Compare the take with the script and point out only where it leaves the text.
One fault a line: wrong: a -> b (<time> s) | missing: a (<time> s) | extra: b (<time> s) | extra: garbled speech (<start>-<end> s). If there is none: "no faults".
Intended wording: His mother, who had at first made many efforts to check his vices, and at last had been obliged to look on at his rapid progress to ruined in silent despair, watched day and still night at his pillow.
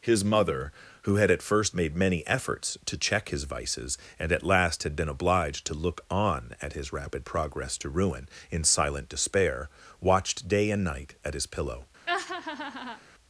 wrong: ruined -> ruin (7.9 s)
missing: still (10.8 s)